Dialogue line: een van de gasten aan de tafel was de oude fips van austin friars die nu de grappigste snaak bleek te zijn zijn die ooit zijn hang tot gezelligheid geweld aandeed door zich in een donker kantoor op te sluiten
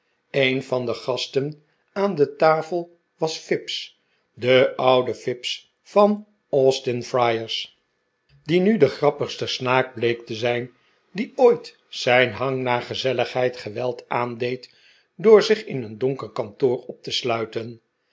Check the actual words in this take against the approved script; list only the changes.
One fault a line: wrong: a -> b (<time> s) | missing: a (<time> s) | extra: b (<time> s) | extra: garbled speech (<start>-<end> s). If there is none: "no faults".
extra: fips (3.4 s)
missing: zijn (10.7 s)
wrong: tot -> naar (12.6 s)